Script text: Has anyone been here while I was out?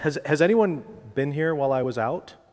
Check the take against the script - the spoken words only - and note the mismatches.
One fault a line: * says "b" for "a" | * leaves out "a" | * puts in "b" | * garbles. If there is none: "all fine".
* puts in "has"